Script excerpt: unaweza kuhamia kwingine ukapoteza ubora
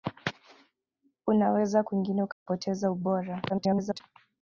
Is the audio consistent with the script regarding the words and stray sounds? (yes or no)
no